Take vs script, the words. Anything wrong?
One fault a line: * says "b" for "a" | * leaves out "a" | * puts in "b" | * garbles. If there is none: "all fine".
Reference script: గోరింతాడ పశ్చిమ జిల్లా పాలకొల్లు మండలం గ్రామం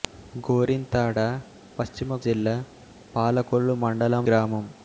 all fine